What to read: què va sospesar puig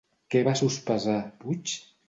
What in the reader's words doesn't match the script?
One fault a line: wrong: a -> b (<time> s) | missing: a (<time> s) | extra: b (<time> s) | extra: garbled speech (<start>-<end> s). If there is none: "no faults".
no faults